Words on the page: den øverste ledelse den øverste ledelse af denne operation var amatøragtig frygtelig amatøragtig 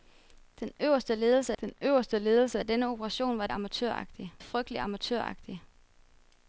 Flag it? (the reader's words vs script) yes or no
no